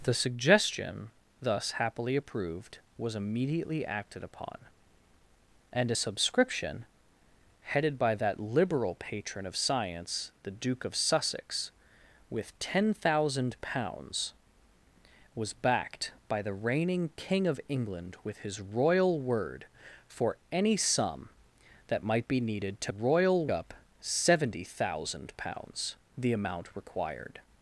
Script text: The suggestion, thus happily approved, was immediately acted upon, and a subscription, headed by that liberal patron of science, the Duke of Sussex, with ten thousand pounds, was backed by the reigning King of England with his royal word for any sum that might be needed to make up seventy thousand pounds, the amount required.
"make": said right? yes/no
no